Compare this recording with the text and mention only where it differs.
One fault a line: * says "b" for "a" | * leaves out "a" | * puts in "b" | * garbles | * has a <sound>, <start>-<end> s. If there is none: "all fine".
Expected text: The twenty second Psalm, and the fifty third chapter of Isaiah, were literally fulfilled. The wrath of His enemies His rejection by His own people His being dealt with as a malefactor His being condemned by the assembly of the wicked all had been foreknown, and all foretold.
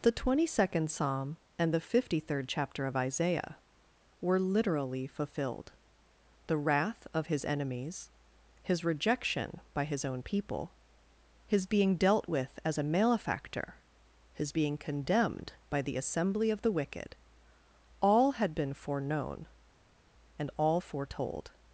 all fine